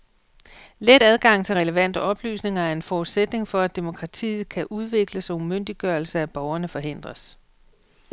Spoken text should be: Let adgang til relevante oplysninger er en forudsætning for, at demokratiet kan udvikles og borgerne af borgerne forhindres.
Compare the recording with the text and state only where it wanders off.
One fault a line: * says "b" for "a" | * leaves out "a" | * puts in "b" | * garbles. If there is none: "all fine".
* says "umyndiggørelse" for "borgerne"